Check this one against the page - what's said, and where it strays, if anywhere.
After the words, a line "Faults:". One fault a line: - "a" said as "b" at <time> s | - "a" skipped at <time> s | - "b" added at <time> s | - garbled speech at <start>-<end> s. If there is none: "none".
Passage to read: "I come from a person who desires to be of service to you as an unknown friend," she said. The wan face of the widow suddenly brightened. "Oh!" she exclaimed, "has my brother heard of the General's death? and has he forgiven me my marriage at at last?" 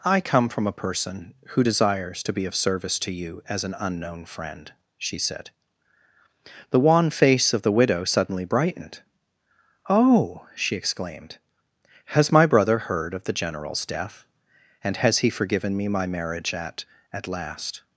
"I come from a person who desires to be of service to you as an unknown friend," she said. The wan face of the widow suddenly brightened. "Oh!" she exclaimed, "has my brother heard of the General's death? and has he forgiven me my marriage at at last?"
Faults:
none